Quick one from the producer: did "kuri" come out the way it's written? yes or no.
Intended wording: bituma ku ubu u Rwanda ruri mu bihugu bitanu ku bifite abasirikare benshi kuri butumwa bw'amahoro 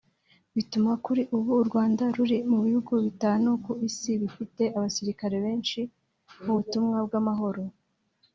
no